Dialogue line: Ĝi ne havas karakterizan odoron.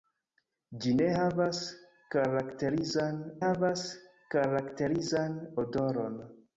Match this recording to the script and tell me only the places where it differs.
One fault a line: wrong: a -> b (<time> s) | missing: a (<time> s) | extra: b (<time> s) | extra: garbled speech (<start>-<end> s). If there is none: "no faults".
extra: havas karakterizan (3.4 s)